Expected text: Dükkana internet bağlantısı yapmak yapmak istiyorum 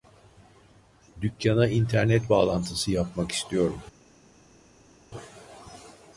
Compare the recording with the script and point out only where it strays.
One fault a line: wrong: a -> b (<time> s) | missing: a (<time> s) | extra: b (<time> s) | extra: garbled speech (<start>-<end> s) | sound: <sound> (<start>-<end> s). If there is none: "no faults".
missing: yapmak (3.3 s)